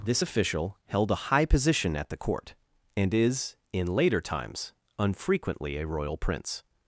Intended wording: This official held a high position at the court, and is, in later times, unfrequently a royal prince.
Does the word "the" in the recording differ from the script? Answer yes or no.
no